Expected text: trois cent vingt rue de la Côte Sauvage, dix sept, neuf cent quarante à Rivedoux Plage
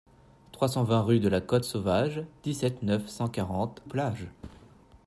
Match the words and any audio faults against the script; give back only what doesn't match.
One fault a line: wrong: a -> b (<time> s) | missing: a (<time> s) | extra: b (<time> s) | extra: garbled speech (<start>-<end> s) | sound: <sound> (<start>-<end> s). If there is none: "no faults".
missing: à Rivedoux (3.8 s)
sound: thud (4.4-4.8 s)